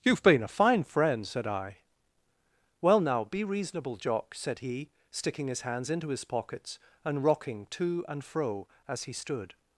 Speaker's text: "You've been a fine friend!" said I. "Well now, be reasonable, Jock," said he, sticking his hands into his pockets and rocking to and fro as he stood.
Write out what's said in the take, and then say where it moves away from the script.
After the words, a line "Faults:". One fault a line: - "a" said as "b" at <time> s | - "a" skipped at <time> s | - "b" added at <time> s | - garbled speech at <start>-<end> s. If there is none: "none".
"You've been a fine friend!" said I. "Well now, be reasonable, Jock," said he, sticking his hands into his pockets and rocking to and fro as he stood.
Faults:
none